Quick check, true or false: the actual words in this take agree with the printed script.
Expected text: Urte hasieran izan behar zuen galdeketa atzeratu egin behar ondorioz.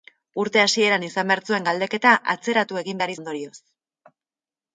true